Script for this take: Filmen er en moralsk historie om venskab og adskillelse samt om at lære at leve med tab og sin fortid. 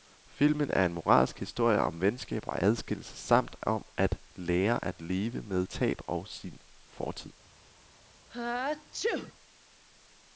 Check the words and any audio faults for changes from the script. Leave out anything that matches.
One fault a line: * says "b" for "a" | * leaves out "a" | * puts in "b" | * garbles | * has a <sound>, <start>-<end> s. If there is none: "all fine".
* has a sneeze, 8.3-9.3 s